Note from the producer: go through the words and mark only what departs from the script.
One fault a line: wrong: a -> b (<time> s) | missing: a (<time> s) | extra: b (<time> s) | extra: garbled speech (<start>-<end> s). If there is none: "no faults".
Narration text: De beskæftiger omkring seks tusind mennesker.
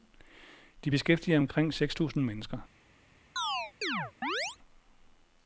no faults